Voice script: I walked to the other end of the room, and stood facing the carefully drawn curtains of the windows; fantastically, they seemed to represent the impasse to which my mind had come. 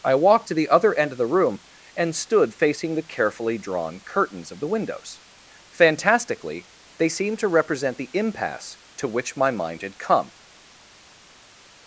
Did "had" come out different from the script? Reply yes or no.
no